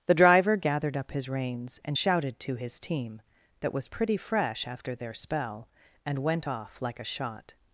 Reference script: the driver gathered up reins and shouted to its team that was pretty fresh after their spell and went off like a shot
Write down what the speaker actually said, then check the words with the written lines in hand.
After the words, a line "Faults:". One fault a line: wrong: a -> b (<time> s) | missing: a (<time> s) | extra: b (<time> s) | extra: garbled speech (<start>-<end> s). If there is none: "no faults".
the driver gathered up his reins and shouted to his team that was pretty fresh after their spell and went off like a shot
Faults:
extra: his (1.1 s)
wrong: its -> his (2.5 s)